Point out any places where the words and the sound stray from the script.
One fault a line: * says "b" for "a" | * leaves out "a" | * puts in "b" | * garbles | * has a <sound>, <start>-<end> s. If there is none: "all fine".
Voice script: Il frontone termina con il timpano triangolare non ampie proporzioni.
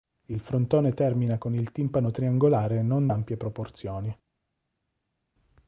all fine